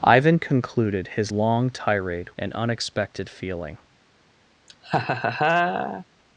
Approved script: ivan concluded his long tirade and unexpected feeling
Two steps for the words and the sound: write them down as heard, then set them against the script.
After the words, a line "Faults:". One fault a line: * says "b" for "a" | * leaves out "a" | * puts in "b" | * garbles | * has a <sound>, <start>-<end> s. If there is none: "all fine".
ivan concluded his long tirade and unexpected feeling
Faults:
* has a laugh, 4.7-6.1 s